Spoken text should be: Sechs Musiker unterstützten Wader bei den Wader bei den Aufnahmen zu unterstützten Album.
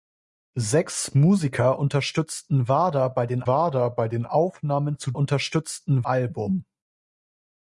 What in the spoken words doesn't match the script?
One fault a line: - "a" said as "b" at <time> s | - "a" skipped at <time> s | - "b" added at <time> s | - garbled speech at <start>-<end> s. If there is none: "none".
none